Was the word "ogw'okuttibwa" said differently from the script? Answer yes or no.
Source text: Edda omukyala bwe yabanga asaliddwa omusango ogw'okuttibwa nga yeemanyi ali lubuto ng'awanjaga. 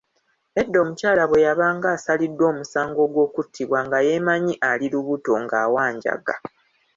no